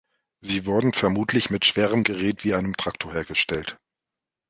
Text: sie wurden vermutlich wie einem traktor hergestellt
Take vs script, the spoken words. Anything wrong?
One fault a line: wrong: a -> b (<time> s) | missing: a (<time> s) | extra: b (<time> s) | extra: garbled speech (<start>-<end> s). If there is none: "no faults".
extra: mit schwerem gerät (1.5 s)